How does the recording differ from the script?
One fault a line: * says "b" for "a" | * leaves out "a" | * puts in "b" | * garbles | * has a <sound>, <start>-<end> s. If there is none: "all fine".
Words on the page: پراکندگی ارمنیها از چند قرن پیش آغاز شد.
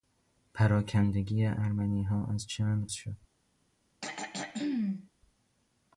* leaves out "قرن پیش آغاز"
* has a throat clearing, 4.0-5.1 s